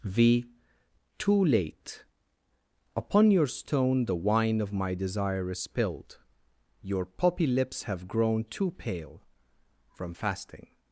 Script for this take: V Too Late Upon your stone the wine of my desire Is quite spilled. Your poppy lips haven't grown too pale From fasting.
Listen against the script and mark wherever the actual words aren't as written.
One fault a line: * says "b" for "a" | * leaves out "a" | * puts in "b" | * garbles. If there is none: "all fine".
* leaves out "quite"
* says "have" for "haven't"